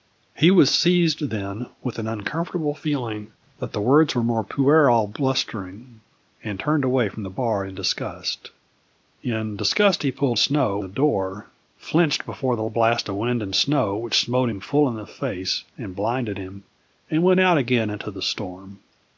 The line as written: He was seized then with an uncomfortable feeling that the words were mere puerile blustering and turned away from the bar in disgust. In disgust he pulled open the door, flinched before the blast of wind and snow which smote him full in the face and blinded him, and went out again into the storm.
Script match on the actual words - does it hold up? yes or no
no